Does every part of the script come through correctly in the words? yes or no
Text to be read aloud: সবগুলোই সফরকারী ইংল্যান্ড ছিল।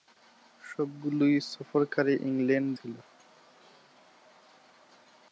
yes